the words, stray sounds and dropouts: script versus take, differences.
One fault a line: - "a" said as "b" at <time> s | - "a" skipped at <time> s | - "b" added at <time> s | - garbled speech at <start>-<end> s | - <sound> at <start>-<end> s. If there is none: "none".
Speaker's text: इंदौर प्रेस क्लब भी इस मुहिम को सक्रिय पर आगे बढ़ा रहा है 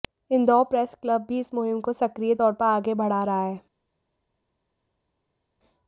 - "तौर" added at 2.3 s